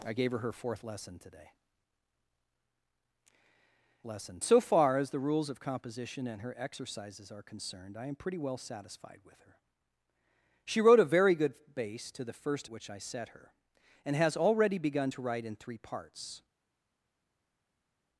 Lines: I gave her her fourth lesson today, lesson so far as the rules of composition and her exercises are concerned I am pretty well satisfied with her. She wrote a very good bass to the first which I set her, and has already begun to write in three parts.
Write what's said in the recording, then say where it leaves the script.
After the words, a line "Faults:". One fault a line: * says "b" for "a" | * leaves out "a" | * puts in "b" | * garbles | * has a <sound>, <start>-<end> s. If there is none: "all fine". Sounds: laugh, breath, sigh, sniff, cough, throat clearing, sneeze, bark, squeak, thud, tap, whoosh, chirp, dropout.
I gave her her fourth lesson today, lesson so far as the rules of composition and her exercises are concerned I am pretty well satisfied with her. She wrote a very good bass to the first which I set her, and has already begun to write in three parts.
Faults:
all fine